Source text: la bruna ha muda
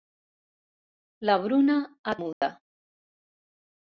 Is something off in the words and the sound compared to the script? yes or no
yes